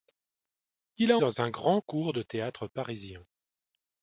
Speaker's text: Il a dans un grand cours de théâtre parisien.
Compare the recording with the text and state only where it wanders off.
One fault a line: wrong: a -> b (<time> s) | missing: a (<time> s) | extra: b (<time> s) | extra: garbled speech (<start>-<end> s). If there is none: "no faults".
no faults